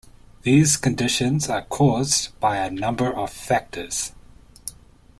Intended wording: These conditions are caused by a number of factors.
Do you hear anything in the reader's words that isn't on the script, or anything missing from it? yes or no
no